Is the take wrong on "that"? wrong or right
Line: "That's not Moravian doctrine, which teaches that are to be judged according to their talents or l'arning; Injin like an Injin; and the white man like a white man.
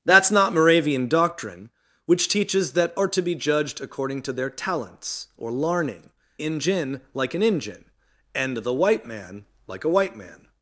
right